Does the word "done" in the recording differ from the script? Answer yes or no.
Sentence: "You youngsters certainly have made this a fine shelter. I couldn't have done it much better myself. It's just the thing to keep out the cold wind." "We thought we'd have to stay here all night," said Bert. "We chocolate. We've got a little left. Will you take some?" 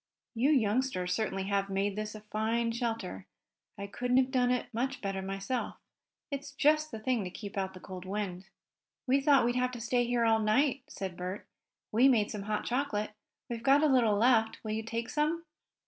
no